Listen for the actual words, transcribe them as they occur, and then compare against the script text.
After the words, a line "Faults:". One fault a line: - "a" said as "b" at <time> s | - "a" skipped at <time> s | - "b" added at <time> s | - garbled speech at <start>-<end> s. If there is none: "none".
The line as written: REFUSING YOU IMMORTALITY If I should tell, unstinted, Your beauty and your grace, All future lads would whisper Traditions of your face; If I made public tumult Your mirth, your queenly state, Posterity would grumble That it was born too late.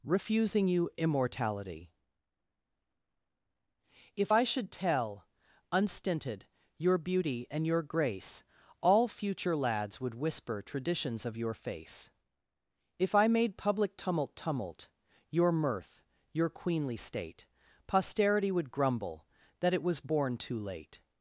REFUSING YOU IMMORTALITY If I should tell, unstinted, Your beauty and your grace, All future lads would whisper Traditions of your face; If I made public tumult tumult Your mirth, your queenly state, Posterity would grumble That it was born too late.
Faults:
- "tumult" added at 14.4 s